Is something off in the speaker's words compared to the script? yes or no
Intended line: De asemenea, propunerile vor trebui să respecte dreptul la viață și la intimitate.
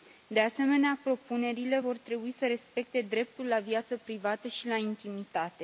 yes